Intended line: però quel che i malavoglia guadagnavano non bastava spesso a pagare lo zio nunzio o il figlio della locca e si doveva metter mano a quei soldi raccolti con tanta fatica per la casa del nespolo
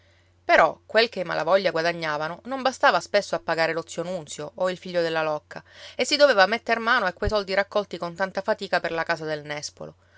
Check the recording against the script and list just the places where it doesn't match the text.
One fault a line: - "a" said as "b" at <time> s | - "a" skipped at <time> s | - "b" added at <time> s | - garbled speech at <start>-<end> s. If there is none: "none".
none